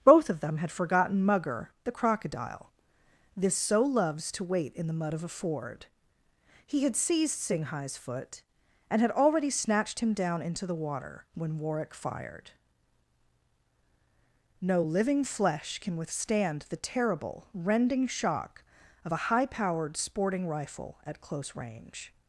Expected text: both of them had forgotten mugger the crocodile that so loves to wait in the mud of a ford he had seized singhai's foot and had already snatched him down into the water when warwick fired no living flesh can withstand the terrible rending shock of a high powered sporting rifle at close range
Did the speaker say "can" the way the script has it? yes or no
yes